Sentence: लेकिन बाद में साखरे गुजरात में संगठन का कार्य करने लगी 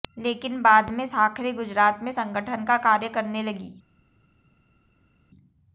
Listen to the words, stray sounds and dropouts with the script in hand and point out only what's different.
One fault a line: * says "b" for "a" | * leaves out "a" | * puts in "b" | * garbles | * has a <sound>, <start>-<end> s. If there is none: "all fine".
all fine